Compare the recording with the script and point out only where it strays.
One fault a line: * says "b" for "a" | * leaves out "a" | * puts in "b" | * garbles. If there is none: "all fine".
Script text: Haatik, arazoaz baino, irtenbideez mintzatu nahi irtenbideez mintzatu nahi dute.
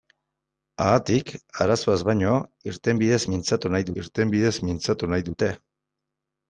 all fine